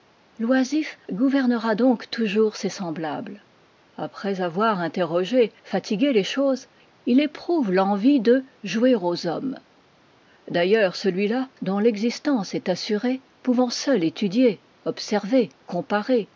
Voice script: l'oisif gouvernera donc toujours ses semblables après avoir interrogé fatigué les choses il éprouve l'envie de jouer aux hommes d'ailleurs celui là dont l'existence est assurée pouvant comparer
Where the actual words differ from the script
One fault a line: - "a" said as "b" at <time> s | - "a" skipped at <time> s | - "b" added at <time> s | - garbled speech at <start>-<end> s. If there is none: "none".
- "seul étudier observer" added at 13.7 s